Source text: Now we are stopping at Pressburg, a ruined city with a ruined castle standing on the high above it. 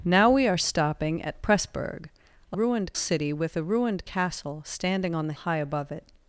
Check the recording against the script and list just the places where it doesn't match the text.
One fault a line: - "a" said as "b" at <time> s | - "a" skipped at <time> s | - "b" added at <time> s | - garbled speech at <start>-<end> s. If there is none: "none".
none